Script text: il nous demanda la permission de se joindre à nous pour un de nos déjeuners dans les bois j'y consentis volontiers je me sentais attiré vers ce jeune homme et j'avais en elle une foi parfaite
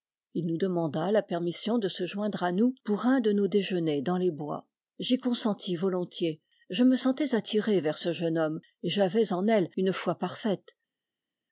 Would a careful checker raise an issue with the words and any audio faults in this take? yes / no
no